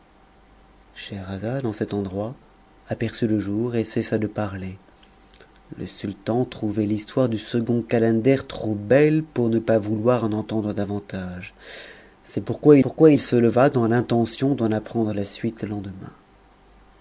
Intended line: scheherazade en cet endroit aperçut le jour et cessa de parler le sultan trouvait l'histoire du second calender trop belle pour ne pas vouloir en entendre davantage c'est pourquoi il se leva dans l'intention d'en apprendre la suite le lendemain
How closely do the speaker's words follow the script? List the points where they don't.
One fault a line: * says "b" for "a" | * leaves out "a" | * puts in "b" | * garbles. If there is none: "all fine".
* puts in "pourquoi"